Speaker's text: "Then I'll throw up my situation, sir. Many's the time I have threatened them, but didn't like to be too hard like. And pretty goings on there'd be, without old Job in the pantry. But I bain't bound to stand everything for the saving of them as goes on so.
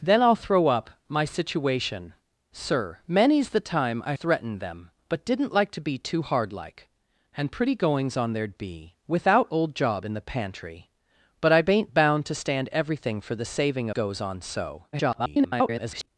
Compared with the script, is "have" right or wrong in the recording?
wrong